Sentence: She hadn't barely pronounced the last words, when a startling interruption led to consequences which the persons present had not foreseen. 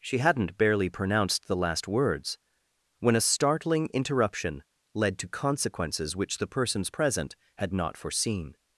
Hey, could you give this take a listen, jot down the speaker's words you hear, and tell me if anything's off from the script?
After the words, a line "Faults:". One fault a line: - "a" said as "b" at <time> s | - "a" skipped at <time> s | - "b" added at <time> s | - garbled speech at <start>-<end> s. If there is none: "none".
She hadn't barely pronounced the last words, when a startling interruption led to consequences which the persons present had not foreseen.
Faults:
none